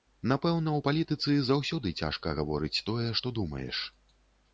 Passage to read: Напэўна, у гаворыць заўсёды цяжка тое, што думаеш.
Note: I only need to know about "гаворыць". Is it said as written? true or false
false